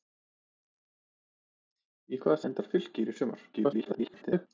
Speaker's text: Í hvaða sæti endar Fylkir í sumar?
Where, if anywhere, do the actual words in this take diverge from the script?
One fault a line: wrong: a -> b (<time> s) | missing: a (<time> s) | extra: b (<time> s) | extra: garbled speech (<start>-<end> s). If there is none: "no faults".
missing: sæti (2.4 s)
extra: garbled speech (3.5-4.5 s)